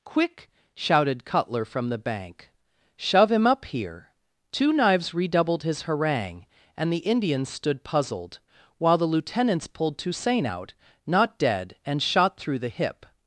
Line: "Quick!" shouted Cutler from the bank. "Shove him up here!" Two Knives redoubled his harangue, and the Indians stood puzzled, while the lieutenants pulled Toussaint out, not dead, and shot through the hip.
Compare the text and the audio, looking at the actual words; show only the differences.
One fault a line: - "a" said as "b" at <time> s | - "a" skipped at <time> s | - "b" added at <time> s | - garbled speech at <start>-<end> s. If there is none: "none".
none